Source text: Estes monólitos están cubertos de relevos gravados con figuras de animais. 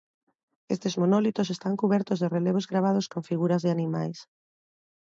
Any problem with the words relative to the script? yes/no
no